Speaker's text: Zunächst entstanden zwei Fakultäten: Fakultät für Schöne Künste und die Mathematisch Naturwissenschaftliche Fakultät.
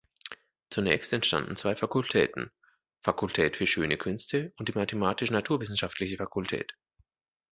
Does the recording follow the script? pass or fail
pass